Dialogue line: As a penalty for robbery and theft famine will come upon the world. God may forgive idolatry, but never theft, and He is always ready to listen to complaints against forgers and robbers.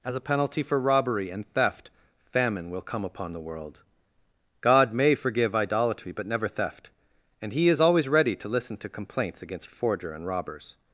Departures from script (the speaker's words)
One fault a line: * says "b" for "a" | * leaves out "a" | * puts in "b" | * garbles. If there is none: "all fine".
* says "forger" for "forgers"